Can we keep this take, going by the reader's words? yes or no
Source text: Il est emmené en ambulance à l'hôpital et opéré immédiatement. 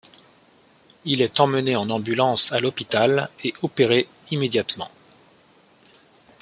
yes